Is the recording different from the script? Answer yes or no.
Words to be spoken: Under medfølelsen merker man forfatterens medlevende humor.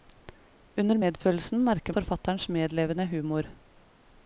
yes